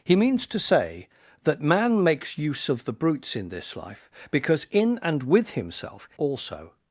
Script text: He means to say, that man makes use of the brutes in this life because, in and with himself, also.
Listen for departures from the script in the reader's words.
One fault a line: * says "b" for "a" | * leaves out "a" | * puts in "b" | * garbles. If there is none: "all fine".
all fine